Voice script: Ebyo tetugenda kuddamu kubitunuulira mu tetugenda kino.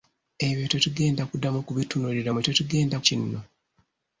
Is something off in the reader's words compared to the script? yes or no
no